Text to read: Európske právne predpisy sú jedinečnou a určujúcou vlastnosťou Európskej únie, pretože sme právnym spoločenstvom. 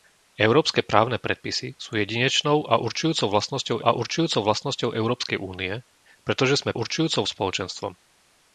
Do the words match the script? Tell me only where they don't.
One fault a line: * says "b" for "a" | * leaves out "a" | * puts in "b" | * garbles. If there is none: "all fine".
* puts in "a určujúcou vlastnosťou"
* says "určujúcou" for "právnym"